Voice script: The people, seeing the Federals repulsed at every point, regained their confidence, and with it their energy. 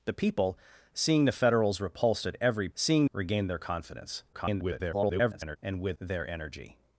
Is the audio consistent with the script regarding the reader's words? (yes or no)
no